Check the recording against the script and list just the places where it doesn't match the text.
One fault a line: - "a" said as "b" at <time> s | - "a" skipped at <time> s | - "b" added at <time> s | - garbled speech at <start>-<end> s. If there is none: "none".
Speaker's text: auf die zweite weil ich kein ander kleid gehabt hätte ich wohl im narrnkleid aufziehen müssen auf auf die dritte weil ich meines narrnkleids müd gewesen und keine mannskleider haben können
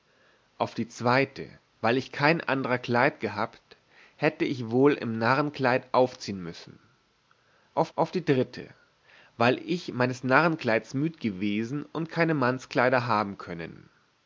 none